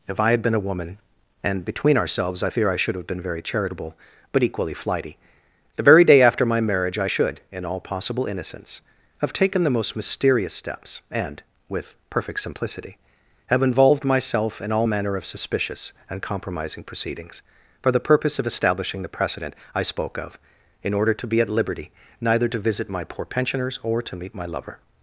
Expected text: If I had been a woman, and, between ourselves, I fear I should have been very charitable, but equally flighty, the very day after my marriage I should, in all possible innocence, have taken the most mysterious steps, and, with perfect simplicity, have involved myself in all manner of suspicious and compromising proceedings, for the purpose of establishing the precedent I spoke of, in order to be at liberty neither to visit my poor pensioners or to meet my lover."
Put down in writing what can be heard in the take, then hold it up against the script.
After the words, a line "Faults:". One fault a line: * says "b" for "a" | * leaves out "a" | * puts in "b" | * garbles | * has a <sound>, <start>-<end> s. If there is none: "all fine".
If I had been a woman, and, between ourselves, I fear I should have been very charitable, but equally flighty, the very day after my marriage I should, in all possible innocence, have taken the most mysterious steps, and, with perfect simplicity, have involved myself in all manner of suspicious and compromising proceedings, for the purpose of establishing the precedent I spoke of, in order to be at liberty neither to visit my poor pensioners or to meet my lover."
Faults:
all fine